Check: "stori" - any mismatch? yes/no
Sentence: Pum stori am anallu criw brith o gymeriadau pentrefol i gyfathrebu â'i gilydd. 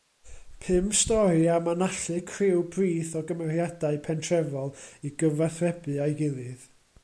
no